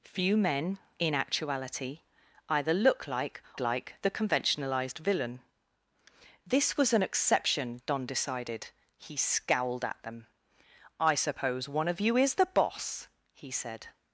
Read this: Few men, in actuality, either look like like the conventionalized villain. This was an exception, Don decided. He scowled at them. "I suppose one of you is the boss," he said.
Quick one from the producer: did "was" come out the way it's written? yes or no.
yes